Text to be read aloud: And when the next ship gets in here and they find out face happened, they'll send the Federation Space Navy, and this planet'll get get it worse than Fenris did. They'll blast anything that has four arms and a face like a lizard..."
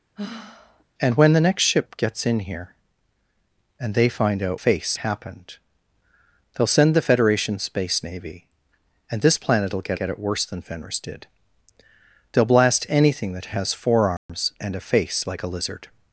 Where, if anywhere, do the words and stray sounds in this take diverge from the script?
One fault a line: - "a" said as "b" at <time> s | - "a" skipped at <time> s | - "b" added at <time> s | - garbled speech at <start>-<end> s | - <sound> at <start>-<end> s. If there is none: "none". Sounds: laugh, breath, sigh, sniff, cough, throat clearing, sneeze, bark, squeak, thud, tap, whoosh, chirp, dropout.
- sigh at 0.2-0.8 s
- dropout at 14.2-14.3 s